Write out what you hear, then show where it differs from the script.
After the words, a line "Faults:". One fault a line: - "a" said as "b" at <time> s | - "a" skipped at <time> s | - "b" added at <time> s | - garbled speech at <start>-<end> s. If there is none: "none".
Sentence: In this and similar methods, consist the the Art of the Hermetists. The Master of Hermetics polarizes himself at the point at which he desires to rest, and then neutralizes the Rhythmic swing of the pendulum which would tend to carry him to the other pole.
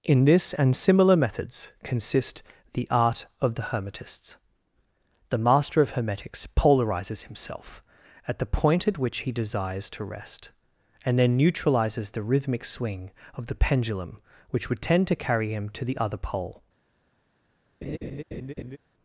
In this and similar methods, consist the Art of the Hermetists. The Master of Hermetics polarizes himself at the point at which he desires to rest, and then neutralizes the Rhythmic swing of the pendulum which would tend to carry him to the other pole.
Faults:
- "the" skipped at 2.9 s